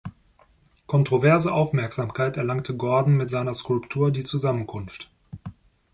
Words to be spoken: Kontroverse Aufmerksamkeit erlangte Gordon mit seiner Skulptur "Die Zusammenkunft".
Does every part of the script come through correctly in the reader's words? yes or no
yes